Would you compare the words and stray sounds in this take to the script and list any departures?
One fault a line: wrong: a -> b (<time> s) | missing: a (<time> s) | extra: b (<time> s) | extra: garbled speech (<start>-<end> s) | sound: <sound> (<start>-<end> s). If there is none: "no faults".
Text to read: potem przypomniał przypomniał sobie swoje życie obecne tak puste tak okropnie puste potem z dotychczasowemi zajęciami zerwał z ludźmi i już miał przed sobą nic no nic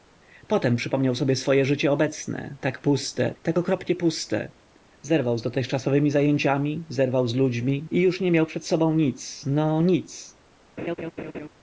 missing: przypomniał (1.1 s)
wrong: potem -> zerwał (5.0 s)
extra: nie (8.2 s)
sound: laugh (10.8-11.5 s)